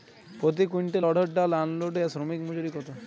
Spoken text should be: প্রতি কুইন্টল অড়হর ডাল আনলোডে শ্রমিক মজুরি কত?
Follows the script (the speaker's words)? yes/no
yes